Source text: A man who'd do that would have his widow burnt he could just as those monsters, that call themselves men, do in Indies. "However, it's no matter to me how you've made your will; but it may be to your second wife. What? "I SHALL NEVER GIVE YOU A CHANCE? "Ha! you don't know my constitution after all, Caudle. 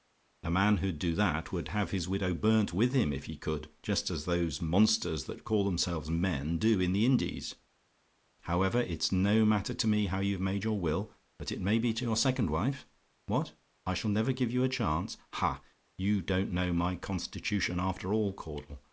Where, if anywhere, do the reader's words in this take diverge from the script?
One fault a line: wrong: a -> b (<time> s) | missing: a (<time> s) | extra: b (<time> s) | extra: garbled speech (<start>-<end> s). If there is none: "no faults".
extra: with him if (2.7 s)
extra: the (6.9 s)